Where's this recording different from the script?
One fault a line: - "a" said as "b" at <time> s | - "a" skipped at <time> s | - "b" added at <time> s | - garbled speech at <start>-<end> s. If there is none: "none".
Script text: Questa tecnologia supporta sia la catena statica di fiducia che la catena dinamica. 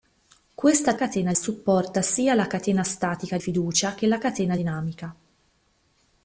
- "tecnologia" said as "catena" at 0.9 s
- "di" skipped at 3.4 s